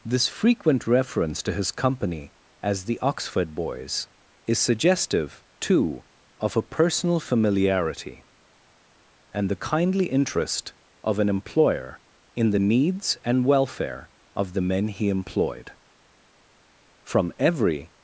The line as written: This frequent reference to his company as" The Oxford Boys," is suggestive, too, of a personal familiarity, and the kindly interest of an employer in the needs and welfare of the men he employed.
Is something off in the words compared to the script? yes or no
yes